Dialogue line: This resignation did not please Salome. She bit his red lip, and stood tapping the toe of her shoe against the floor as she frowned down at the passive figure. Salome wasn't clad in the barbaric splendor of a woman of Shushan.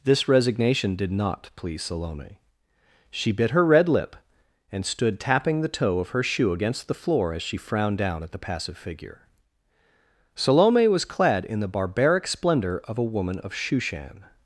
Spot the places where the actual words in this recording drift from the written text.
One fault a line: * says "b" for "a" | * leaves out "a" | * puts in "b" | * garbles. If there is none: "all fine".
* says "her" for "his"
* says "was" for "wasn't"